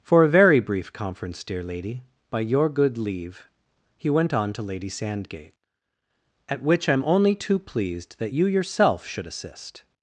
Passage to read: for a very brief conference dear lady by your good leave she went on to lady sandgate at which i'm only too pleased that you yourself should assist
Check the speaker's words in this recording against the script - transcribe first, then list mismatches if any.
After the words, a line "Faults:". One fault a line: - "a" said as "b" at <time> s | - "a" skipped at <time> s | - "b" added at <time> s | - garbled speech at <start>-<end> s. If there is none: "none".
for a very brief conference dear lady by your good leave he went on to lady sandgate at which i'm only too pleased that you yourself should assist
Faults:
- "she" said as "he" at 4.0 s